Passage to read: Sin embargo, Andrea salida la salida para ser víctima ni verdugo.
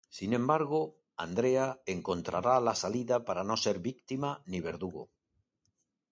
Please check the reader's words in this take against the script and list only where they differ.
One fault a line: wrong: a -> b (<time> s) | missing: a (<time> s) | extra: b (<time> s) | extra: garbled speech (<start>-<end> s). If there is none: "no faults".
wrong: salida -> encontrará (1.9 s)
extra: no (3.4 s)